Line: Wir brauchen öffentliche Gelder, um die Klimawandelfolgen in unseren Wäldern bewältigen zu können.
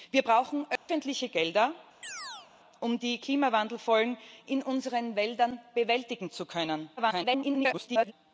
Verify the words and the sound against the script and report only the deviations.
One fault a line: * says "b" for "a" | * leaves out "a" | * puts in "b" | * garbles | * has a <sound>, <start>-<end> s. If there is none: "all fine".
* has a dropout, 0.8-0.9 s
* has a chirp, 2.0-2.5 s
* garbles